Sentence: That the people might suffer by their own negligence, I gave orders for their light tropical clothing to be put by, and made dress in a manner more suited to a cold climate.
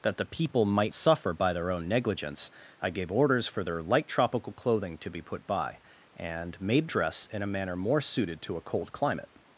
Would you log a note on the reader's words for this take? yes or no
no